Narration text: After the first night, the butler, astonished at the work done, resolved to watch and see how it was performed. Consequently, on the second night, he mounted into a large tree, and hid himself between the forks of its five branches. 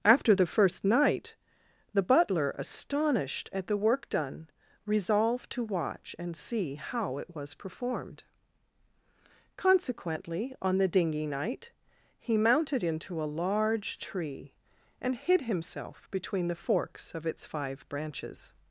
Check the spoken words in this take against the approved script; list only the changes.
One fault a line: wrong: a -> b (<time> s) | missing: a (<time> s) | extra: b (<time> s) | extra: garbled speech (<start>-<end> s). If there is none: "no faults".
wrong: second -> dinghy (10.9 s)